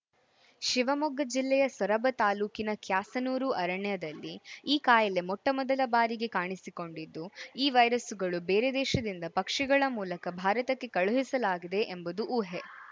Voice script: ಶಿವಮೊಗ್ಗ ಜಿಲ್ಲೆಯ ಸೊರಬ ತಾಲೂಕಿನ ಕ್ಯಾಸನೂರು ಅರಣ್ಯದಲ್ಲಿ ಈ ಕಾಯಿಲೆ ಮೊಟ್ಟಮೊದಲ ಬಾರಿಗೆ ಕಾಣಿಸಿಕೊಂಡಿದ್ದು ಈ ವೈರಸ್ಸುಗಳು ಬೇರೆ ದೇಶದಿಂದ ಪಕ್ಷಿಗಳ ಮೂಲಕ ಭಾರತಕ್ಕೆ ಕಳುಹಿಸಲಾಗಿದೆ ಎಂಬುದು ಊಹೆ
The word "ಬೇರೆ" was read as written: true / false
true